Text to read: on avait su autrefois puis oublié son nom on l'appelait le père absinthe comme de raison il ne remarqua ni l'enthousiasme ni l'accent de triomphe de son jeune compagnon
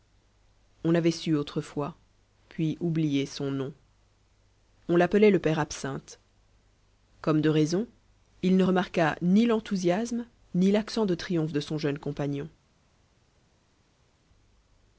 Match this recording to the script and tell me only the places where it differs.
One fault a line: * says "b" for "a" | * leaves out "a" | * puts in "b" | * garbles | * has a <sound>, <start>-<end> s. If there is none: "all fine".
all fine